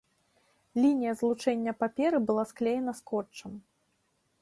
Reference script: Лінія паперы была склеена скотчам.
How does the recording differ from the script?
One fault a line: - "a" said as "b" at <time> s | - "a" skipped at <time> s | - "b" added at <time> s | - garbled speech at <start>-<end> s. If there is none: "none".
- "злучэння" added at 1.2 s